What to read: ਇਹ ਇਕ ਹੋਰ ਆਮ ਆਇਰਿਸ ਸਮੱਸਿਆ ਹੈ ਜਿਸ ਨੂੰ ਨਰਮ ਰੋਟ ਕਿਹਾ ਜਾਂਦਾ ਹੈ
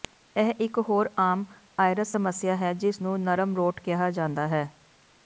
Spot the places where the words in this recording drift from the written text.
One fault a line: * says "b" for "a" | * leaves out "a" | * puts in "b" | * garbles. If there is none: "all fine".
all fine